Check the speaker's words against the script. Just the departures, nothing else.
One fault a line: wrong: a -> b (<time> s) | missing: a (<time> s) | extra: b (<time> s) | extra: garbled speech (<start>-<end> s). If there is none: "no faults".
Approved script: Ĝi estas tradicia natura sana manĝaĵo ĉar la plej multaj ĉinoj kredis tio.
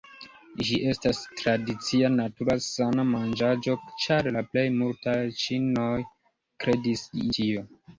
no faults